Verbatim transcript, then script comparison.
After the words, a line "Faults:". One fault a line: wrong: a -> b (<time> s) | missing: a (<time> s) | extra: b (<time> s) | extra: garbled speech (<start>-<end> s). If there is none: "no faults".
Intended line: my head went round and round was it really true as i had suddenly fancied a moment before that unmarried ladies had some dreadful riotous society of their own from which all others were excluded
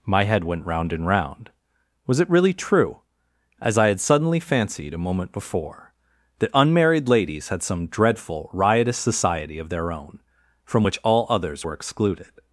my head went round and round was it really true as i had suddenly fancied a moment before that unmarried ladies had some dreadful riotous society of their own from which all others were excluded
Faults:
no faults